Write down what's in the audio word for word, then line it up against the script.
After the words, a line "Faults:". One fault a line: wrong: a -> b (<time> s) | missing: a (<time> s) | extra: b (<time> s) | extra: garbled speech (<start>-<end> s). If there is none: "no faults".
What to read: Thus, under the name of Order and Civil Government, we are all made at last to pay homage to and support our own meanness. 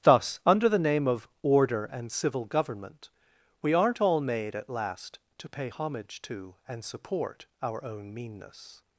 Thus, under the name of Order and Civil Government, we aren't all made at last to pay homage to and support our own meanness.
Faults:
wrong: are -> aren't (3.7 s)